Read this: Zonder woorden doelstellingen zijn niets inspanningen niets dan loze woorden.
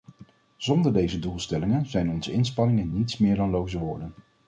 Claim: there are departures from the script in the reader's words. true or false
true